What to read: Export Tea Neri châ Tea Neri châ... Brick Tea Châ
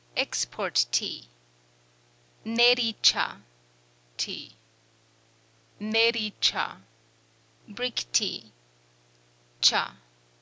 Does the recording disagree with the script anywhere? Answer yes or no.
no